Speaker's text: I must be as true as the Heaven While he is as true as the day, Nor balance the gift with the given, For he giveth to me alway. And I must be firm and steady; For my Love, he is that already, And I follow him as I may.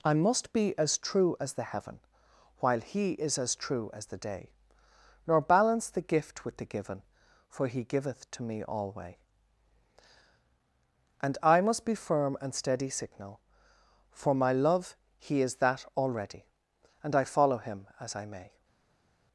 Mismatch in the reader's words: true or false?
true